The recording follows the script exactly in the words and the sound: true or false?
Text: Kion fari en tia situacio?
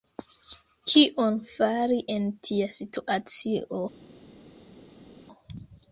true